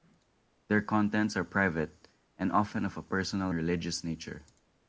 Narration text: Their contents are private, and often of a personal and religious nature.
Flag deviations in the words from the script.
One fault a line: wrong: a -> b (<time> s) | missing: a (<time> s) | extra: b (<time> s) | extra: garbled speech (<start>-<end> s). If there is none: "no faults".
missing: and (3.5 s)